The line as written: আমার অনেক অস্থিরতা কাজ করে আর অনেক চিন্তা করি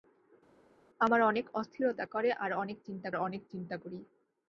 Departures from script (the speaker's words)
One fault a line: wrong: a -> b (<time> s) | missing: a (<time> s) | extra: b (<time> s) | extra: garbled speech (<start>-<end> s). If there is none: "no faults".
missing: কাজ (2.1 s)
extra: অনেক চিন্তা (3.2 s)